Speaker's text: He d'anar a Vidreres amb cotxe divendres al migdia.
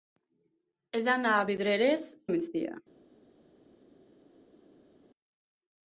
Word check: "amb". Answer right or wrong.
wrong